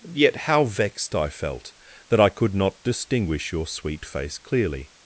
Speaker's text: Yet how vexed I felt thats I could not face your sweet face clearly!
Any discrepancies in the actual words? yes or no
yes